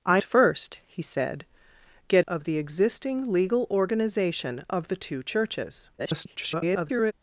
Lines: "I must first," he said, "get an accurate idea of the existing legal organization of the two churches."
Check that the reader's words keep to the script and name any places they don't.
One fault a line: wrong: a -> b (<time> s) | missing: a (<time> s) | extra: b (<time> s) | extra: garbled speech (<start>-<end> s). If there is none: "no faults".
missing: must (0.2 s)
missing: an accurate idea (2.2 s)
extra: garbled speech (6.0-7.1 s)